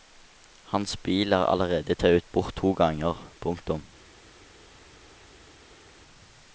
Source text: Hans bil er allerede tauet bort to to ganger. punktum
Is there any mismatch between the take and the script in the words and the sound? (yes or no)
yes